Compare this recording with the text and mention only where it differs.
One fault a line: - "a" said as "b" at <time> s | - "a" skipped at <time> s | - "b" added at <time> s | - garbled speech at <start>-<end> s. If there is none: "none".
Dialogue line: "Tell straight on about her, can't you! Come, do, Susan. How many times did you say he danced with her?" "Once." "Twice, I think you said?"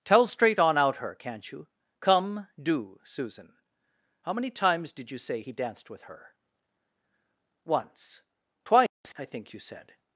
- "about" said as "out" at 0.8 s